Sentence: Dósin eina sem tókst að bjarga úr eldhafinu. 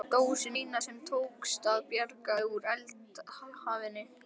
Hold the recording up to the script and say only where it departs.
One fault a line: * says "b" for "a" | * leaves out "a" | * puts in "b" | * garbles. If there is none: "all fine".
all fine